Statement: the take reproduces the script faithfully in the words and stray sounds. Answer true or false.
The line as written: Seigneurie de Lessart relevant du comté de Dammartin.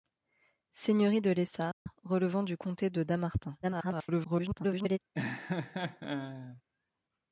false